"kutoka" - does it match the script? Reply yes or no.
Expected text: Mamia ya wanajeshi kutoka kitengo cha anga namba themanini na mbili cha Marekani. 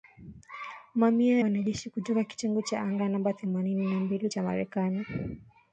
yes